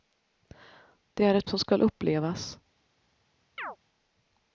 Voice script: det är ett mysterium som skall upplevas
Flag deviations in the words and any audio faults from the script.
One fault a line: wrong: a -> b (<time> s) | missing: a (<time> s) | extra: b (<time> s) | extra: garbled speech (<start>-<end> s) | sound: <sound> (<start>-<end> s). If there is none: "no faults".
missing: mysterium (1.5 s)
sound: chirp (3.6-3.8 s)